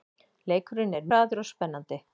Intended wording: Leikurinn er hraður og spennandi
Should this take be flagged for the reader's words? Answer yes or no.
no